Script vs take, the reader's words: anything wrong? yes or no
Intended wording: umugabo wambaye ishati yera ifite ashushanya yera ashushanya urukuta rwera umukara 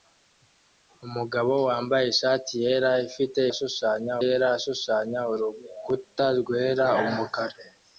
no